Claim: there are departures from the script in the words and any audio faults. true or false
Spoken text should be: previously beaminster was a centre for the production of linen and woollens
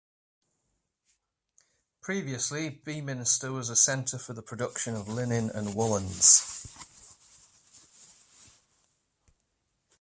false